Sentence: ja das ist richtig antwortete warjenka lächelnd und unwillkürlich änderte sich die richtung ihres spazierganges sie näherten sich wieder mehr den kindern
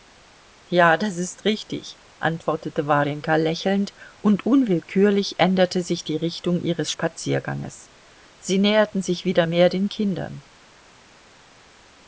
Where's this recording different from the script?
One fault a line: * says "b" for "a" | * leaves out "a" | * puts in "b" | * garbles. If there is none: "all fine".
all fine